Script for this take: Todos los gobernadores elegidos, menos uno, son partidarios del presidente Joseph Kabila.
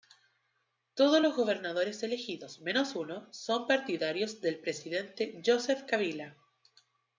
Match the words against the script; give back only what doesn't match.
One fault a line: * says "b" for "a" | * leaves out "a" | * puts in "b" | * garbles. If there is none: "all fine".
all fine